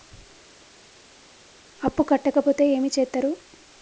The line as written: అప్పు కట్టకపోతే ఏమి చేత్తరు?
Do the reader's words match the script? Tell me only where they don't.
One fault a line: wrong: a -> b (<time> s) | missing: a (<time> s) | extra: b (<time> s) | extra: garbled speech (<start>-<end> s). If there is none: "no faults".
no faults